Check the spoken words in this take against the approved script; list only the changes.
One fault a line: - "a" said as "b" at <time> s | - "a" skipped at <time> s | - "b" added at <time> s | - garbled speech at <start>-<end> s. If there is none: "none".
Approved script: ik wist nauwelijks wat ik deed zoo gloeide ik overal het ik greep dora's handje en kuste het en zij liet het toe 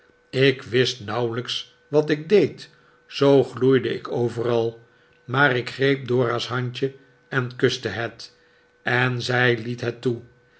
- "het" said as "maar" at 5.2 s